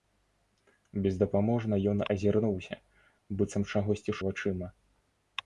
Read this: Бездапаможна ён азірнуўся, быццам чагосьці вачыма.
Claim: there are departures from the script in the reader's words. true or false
false